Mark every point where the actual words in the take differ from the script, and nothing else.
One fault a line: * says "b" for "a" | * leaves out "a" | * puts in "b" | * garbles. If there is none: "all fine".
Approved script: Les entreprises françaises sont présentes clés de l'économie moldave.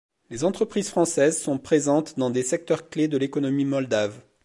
* puts in "dans des secteurs"